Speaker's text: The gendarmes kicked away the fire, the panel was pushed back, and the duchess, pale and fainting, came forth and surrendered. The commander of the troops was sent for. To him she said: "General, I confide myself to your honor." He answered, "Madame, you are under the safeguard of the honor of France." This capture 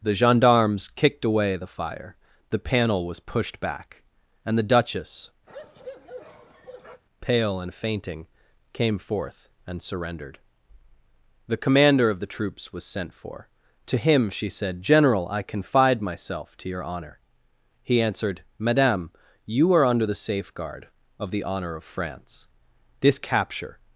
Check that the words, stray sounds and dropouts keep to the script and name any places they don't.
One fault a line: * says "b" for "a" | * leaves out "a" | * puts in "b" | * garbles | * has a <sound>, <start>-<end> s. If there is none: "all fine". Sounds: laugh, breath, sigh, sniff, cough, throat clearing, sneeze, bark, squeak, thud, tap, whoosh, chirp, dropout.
* has a bark, 5.5-7.0 s